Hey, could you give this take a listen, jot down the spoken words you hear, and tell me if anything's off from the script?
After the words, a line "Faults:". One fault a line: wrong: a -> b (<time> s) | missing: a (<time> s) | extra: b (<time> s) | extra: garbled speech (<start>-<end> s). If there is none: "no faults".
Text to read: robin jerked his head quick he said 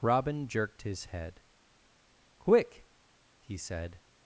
robin jerked his head quick he said
Faults:
no faults